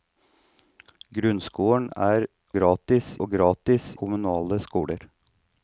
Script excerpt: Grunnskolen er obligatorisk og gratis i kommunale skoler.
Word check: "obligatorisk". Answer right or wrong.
wrong